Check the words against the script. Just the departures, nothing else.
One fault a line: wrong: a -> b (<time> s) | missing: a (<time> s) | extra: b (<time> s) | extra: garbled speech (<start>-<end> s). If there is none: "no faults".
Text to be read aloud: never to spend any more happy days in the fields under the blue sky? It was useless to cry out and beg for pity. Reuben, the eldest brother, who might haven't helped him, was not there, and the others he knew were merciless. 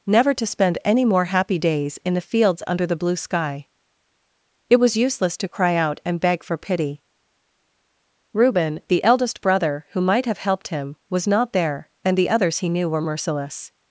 wrong: haven't -> have (10.2 s)